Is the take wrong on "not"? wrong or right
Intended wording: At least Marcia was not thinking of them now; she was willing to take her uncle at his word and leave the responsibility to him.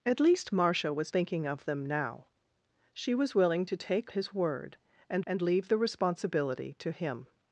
wrong